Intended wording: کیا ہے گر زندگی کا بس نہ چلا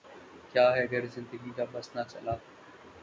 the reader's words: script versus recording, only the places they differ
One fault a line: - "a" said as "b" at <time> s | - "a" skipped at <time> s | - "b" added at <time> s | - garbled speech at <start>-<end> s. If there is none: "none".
none